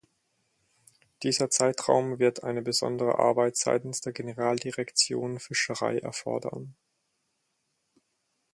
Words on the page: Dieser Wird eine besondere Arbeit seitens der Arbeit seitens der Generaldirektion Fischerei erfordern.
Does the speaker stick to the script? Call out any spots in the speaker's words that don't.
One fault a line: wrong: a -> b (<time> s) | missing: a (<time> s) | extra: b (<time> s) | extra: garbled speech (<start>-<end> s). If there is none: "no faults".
extra: Zeitraum (1.5 s)
missing: Arbeit seitens der (4.1 s)